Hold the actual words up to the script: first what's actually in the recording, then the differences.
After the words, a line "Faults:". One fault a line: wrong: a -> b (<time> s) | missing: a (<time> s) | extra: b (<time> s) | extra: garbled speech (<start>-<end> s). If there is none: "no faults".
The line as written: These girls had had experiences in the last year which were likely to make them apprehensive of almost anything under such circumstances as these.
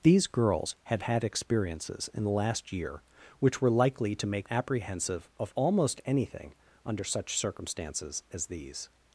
These girls had had experiences in the last year which were likely to make apprehensive of almost anything under such circumstances as these.
Faults:
missing: them (4.5 s)